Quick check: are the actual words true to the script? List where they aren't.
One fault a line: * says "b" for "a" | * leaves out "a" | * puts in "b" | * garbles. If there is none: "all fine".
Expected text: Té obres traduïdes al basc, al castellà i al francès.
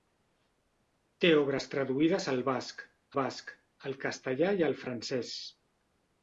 * puts in "basc"